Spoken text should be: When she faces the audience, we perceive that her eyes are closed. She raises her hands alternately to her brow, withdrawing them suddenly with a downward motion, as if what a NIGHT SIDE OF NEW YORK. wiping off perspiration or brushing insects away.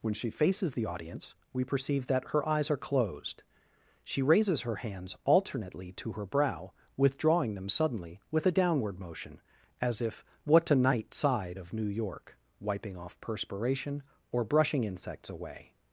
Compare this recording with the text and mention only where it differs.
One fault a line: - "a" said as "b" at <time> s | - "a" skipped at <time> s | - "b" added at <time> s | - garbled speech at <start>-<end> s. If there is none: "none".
none